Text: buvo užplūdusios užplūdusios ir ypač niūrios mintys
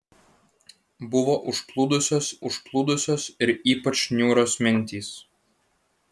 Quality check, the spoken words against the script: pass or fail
pass